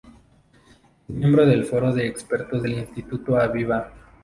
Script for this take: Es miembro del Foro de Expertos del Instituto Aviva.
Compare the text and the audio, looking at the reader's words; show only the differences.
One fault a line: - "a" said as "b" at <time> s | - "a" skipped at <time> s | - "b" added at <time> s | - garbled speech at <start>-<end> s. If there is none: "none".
none